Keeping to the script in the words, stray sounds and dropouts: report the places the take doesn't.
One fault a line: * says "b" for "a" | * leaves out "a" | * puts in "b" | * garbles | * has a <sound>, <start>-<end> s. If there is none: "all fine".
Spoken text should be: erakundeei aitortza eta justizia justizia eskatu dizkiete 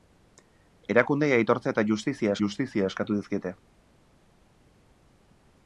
all fine